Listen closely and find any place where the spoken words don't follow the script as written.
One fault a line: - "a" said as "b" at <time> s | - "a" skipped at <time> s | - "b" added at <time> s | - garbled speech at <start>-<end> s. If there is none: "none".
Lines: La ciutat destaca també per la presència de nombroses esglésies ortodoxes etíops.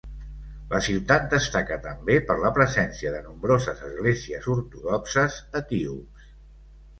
none